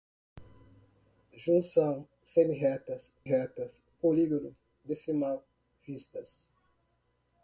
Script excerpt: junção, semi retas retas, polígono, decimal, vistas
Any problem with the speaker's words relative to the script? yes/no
no